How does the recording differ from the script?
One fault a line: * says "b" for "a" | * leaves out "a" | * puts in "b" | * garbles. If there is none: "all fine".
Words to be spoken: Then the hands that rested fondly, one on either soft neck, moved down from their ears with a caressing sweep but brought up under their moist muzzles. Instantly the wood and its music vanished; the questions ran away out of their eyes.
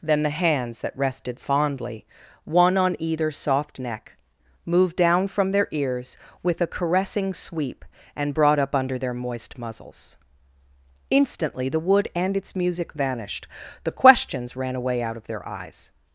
* says "and" for "but"